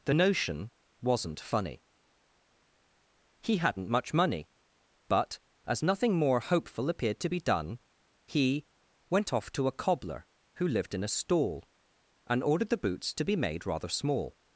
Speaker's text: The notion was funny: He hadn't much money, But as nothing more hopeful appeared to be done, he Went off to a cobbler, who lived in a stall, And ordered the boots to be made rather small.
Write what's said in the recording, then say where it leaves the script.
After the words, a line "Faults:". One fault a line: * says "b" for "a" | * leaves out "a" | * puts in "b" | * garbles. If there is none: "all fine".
The notion wasn't funny: He hadn't much money, But as nothing more hopeful appeared to be done, he Went off to a cobbler, who lived in a stall, And ordered the boots to be made rather small.
Faults:
* says "wasn't" for "was"